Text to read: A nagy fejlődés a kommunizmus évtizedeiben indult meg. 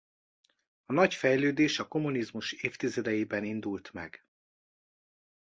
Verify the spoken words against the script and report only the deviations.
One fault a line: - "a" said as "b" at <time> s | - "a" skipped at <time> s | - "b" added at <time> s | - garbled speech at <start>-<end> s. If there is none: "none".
none